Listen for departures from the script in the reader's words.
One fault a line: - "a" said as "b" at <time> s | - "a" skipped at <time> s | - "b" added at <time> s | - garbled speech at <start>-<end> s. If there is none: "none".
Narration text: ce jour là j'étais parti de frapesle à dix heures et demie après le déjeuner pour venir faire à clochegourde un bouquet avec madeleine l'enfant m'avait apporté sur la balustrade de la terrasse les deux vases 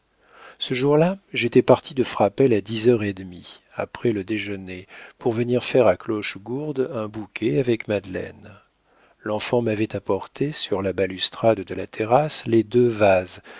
none